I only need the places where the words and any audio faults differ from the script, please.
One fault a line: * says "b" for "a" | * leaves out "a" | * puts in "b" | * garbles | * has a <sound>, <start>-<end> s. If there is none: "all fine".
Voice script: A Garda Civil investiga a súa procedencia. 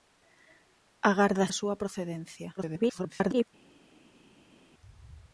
* leaves out "Civil investiga"
* garbles